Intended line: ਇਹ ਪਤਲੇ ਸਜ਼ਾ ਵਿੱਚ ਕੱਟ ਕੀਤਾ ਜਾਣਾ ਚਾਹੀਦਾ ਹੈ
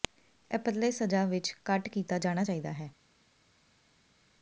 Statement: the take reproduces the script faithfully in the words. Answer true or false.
true